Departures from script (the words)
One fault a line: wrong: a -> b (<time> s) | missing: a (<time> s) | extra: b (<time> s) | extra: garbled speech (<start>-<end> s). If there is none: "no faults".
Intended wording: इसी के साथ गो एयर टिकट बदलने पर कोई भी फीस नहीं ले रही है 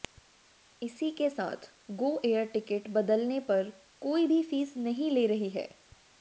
no faults